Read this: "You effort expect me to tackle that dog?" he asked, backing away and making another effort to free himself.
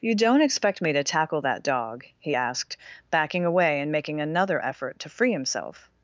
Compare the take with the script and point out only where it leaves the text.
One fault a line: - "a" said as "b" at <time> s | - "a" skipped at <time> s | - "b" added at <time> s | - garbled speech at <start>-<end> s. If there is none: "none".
- "effort" said as "don't" at 0.1 s